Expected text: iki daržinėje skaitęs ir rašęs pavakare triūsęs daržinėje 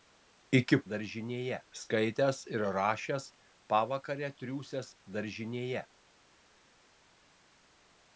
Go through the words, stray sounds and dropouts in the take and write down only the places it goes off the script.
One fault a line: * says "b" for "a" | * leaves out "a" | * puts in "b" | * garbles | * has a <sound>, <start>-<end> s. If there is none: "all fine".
all fine